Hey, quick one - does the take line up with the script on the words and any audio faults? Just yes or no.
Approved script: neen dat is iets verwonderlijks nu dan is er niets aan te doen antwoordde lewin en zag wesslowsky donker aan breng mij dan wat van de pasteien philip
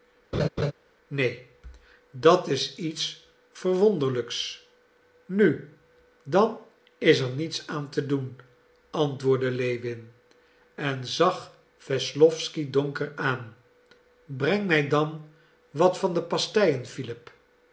no